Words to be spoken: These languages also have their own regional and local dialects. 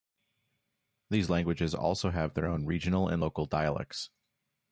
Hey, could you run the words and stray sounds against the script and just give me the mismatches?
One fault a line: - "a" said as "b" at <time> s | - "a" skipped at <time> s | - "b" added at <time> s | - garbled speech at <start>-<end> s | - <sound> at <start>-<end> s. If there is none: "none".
none